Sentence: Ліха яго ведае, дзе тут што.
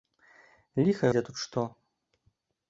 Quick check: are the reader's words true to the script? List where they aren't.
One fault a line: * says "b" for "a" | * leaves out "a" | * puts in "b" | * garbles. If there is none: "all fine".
* leaves out "яго ведае"